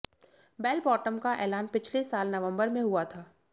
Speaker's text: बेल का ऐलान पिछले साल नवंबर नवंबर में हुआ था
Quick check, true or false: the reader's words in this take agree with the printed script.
false